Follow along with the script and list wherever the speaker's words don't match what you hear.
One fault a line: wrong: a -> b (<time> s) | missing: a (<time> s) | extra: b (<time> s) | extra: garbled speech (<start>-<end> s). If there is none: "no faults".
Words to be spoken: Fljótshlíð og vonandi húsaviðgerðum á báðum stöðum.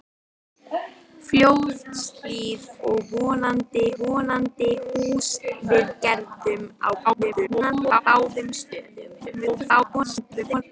extra: vonandi (4.0 s)
extra: garbled speech (7.0-8.0 s)
extra: garbled speech (9.2-10.6 s)